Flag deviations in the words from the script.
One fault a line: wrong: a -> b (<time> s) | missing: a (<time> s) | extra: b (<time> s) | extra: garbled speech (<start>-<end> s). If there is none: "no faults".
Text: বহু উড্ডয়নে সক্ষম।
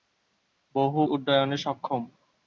no faults